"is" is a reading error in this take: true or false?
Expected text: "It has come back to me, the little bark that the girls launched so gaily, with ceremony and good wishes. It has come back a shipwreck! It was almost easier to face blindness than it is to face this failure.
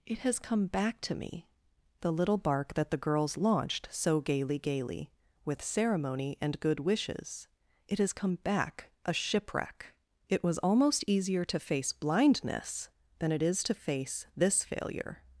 false